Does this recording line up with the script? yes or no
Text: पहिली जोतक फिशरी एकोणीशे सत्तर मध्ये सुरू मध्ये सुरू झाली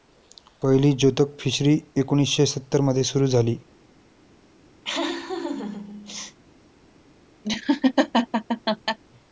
no